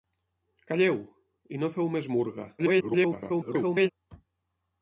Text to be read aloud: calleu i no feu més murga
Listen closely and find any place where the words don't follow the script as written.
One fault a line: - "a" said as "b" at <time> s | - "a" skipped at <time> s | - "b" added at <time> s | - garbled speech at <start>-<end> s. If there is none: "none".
- garbled speech at 2.6-3.9 s